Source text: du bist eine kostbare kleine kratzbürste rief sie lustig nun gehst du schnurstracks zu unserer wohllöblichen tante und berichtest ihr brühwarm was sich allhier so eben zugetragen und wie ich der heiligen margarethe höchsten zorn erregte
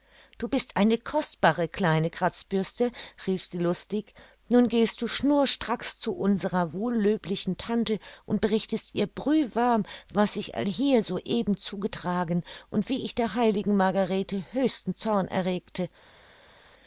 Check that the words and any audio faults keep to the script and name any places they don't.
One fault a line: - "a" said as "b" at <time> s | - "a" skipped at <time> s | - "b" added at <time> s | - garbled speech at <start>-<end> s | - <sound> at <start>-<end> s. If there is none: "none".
none